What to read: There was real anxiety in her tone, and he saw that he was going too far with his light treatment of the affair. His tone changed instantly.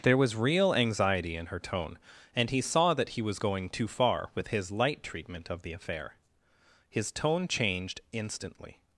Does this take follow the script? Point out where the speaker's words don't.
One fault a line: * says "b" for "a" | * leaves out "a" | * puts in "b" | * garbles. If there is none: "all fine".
all fine